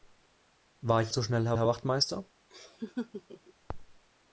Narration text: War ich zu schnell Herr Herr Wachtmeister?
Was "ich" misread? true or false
false